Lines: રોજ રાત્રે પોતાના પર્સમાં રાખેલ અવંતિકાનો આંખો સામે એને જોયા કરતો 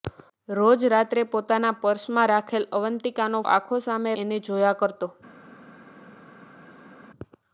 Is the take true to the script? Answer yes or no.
yes